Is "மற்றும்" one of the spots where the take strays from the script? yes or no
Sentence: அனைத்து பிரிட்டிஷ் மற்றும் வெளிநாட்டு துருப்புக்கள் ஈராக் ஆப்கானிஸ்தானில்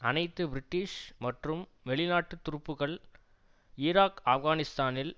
no